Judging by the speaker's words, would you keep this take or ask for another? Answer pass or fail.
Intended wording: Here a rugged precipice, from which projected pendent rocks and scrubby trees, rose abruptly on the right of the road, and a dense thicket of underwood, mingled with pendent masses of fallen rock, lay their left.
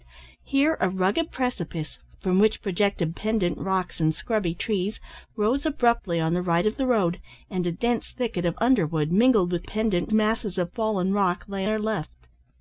pass